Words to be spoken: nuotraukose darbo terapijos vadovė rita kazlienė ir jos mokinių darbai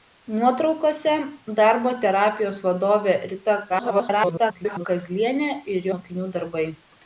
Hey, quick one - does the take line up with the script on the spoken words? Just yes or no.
no